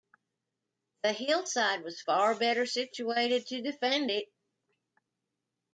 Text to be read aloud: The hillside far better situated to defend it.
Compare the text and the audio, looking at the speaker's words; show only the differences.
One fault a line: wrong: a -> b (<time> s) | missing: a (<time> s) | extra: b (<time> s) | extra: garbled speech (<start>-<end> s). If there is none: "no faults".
extra: was (1.8 s)